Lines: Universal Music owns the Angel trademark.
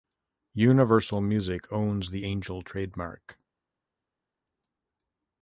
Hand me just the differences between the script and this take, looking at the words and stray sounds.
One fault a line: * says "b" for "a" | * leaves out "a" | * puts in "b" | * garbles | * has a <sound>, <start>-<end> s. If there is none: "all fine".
all fine